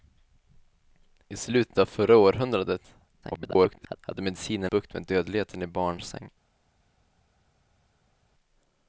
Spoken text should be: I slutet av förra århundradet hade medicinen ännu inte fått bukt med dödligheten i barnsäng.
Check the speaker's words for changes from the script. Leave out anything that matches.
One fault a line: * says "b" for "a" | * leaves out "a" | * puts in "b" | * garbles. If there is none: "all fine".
* garbles
* leaves out "ännu inte fått"